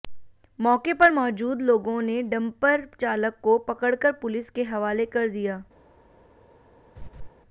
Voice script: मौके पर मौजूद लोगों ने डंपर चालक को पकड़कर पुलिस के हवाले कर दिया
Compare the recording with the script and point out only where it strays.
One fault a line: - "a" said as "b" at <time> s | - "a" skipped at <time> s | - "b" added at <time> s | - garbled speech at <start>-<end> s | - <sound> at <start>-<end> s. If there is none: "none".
- laugh at 7.0-7.3 s